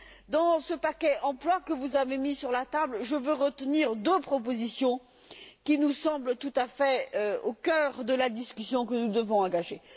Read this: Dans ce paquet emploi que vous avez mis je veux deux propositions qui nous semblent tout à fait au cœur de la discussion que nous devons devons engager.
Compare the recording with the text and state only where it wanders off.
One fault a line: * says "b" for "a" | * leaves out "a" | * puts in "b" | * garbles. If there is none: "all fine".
* puts in "sur la table"
* puts in "retenir"
* leaves out "devons"